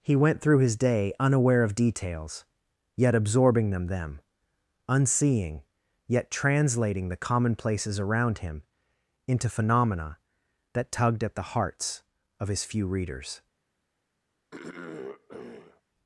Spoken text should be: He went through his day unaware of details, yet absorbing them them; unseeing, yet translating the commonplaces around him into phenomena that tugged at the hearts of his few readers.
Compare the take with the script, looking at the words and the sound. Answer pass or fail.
fail